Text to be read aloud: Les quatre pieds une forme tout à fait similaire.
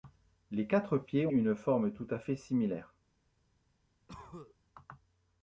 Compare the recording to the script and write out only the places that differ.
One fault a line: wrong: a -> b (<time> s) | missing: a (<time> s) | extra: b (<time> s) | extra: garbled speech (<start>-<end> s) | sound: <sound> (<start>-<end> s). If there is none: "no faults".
sound: cough (4.1-4.6 s)